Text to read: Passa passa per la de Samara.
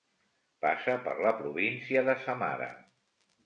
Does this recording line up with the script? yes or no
no